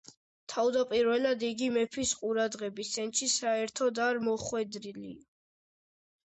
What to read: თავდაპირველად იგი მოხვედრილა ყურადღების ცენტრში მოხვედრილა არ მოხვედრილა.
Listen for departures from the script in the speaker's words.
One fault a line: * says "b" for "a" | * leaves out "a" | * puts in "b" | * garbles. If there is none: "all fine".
* says "მეფის" for "მოხვედრილა"
* says "საერთოდ" for "მოხვედრილა"